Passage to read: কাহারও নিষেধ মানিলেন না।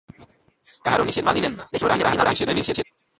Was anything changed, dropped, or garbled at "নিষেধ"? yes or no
no